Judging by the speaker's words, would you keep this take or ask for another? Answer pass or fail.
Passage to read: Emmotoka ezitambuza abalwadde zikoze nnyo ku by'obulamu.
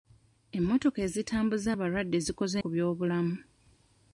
fail